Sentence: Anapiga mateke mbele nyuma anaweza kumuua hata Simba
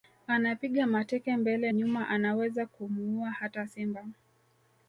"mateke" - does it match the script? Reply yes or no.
yes